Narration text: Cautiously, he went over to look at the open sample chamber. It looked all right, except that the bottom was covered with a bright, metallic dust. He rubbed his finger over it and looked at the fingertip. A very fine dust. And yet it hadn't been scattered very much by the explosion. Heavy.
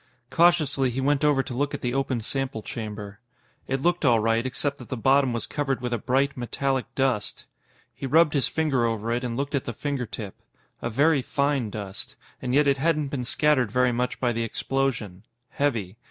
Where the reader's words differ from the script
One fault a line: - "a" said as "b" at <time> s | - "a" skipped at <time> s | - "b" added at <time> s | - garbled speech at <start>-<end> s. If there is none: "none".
none